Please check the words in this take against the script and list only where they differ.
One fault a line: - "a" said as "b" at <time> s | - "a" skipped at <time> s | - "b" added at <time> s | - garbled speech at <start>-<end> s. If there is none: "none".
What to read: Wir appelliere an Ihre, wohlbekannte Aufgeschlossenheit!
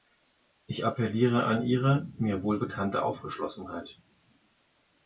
- "Wir" said as "Ich" at 0.7 s
- "mir" added at 2.2 s